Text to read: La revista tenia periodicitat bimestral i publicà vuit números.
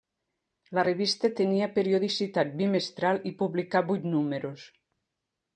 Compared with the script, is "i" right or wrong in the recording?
right